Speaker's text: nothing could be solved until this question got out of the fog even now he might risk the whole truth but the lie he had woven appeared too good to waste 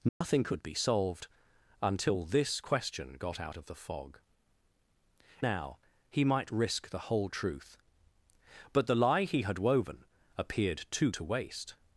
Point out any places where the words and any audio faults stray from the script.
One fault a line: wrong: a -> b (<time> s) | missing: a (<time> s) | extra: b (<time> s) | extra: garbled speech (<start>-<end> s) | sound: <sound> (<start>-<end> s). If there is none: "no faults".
sound: dropout (0.1-0.2 s)
missing: even (4.2 s)
missing: good (11.1 s)